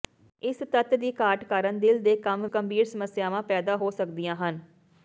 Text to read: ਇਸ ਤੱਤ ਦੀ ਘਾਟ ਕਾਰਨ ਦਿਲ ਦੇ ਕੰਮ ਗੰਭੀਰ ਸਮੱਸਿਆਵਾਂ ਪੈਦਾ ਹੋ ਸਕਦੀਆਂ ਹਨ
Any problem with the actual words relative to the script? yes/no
no